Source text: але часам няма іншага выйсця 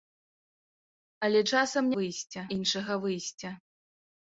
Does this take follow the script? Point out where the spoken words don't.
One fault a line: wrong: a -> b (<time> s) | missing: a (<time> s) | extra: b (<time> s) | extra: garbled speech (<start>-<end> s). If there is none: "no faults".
wrong: няма -> выйсця (2.0 s)